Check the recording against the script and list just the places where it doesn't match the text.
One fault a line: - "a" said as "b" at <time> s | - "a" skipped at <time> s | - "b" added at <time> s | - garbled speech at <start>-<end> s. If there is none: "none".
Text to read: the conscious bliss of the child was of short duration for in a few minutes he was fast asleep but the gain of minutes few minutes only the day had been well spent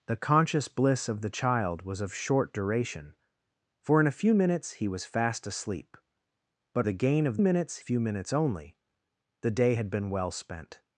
none